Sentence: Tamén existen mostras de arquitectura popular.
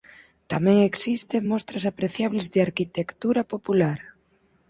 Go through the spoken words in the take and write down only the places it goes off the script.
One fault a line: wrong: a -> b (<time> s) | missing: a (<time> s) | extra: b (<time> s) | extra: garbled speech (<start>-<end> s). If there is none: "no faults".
extra: apreciables (1.9 s)